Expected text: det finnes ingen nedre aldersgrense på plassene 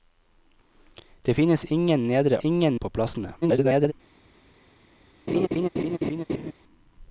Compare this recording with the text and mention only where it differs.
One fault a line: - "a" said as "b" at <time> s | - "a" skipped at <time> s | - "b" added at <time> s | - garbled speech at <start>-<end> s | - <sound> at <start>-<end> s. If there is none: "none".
- "aldersgrense" said as "ingen" at 2.4 s
- garbled speech at 3.4-3.9 s
- laugh at 5.3-6.5 s